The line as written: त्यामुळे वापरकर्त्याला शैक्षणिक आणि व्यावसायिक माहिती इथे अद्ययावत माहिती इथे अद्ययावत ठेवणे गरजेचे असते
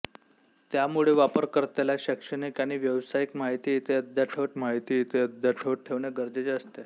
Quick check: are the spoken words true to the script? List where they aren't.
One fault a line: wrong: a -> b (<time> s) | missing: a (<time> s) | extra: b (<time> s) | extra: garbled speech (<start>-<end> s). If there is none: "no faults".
no faults